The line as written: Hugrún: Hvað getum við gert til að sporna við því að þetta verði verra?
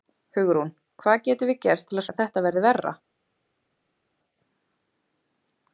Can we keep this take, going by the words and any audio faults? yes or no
no